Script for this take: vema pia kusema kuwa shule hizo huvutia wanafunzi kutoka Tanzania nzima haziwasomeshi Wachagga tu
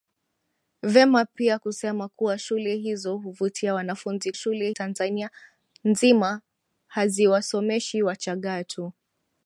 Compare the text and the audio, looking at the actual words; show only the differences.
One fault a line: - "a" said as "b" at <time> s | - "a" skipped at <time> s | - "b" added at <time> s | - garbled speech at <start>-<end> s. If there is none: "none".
- "kutoka" said as "shule" at 4.3 s